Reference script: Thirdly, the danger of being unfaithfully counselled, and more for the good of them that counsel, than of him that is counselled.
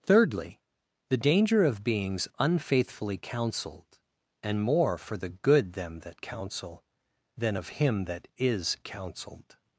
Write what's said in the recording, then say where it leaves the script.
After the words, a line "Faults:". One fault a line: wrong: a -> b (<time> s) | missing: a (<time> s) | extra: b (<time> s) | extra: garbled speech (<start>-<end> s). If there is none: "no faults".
Thirdly, the danger of beings unfaithfully counselled, and more for the good them that counsel, than of him that is counselled.
Faults:
wrong: being -> beings (1.8 s)
missing: of (5.7 s)